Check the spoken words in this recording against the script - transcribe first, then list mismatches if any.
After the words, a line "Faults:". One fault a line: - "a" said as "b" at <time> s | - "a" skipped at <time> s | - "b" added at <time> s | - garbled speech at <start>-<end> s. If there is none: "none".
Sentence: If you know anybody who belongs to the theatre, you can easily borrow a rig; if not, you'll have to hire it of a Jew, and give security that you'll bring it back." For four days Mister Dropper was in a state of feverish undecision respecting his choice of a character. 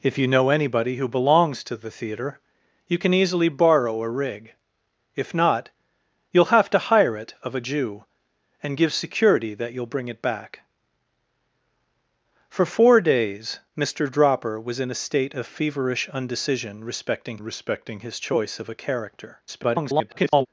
If you know anybody who belongs to the theatre, you can easily borrow a rig; if not, you'll have to hire it of a Jew, and give security that you'll bring it back." For four days Mister Dropper was in a state of feverish undecision respecting respecting his choice of a character. [garbled]
Faults:
- "respecting" added at 17.4 s
- garbled speech at 19.5-20.5 s